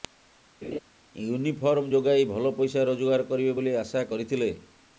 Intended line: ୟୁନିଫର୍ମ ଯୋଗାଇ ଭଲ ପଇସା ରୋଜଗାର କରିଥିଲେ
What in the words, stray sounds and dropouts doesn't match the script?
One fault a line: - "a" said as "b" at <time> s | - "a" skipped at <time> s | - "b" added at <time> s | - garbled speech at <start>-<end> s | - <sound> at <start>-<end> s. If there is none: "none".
- laugh at 0.6-0.8 s
- "କରିବେ ବୋଲି ଆଶା" added at 3.3 s